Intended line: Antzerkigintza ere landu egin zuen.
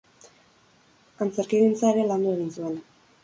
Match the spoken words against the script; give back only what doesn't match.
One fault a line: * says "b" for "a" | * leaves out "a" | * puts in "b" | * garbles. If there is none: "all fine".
all fine